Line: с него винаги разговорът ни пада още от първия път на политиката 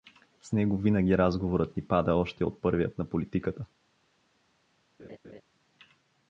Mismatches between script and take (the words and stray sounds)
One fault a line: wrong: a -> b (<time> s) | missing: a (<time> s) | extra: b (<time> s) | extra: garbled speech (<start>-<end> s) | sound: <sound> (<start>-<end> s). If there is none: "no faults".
missing: път (2.9 s)
sound: laugh (5.0-5.4 s)